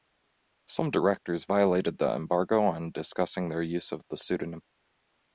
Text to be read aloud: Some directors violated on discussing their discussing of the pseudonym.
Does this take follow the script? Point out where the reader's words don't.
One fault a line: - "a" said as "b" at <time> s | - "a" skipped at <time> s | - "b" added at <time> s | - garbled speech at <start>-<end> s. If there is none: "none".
- "the embargo" added at 2.0 s
- "discussing" said as "use" at 3.6 s